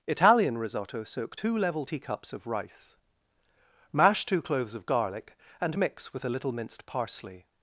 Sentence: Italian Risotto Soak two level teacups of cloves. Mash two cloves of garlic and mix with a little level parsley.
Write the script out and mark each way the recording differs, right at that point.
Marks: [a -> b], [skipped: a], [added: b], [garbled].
Italian Risotto Soak two level teacups of [cloves. -> rice] Mash two cloves of garlic and mix with a little [level -> minced] parsley.